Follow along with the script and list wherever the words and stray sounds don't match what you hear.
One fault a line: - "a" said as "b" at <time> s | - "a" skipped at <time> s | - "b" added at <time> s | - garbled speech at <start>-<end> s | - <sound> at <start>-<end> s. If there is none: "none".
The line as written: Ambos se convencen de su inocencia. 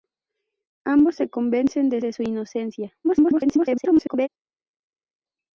- "de" added at 2.0 s
- garbled speech at 3.0-4.3 s